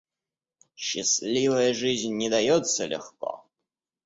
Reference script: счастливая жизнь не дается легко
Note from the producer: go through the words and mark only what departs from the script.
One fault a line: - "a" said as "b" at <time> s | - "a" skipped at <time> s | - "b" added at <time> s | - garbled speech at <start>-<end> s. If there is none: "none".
none